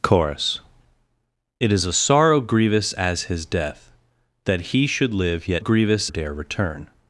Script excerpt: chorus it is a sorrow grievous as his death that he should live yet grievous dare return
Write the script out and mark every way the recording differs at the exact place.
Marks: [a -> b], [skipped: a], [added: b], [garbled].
chorus it is a sorrow grievous as his death that he should live yet grievous dare return